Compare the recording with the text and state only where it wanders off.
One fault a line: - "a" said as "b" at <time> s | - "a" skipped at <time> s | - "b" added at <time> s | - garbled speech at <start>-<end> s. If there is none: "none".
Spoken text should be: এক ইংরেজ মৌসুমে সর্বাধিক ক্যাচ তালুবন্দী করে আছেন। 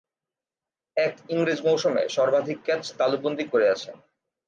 none